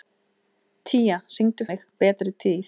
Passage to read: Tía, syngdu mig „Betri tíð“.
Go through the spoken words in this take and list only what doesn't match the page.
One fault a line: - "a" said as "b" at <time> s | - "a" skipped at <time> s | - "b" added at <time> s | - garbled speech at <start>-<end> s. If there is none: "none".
none